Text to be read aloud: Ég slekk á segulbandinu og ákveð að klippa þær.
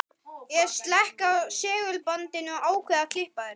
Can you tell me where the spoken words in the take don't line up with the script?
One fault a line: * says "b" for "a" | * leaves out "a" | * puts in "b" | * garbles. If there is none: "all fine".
all fine